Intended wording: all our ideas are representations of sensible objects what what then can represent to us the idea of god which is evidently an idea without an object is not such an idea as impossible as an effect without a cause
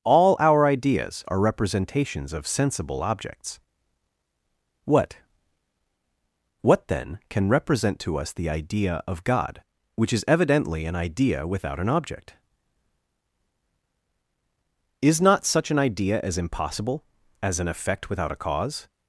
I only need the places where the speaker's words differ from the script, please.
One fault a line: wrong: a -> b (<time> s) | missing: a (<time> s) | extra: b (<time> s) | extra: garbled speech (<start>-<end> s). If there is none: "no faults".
no faults